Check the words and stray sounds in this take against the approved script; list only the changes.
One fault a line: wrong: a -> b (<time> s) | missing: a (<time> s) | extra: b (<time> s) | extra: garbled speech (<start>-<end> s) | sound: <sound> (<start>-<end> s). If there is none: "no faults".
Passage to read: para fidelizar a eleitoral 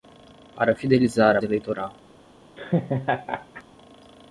sound: laugh (2.6-3.6 s)